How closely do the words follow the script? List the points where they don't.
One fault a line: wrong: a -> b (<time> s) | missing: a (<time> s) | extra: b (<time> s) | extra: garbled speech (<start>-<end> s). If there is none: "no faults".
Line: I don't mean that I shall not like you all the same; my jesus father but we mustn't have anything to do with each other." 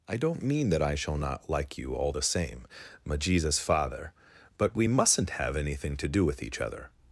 no faults